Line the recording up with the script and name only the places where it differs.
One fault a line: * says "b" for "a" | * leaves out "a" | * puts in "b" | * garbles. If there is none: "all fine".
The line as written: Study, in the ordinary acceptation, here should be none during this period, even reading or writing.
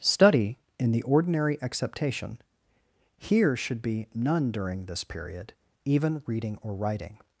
all fine